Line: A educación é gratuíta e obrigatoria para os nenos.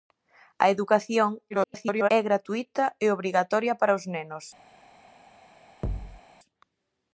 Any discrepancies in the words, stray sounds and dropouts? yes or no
yes